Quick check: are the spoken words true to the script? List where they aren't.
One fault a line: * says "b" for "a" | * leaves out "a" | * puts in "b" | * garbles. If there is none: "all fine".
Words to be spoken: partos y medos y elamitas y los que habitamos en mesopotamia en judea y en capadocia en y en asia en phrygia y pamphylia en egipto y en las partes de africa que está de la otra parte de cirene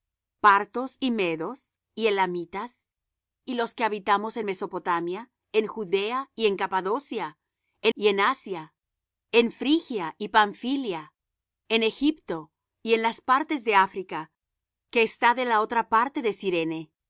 all fine